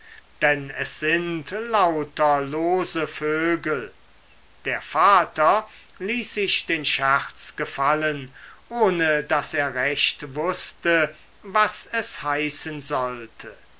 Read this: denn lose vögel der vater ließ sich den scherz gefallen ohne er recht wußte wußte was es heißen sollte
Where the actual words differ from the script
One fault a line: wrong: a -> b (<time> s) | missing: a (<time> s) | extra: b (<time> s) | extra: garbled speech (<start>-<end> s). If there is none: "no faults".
extra: es sind lauter (0.7 s)
extra: daß (9.3 s)
missing: wußte (11.1 s)